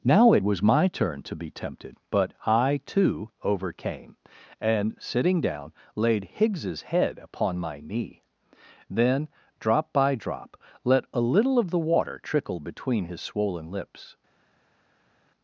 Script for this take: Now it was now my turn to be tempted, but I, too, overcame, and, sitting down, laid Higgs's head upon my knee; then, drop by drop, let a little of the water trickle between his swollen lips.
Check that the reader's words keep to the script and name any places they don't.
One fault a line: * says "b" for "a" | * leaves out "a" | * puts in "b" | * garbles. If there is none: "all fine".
* leaves out "now"